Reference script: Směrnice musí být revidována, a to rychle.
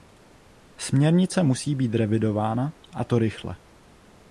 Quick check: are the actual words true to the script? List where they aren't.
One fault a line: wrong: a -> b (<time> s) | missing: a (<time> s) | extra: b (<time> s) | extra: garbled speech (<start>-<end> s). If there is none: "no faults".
no faults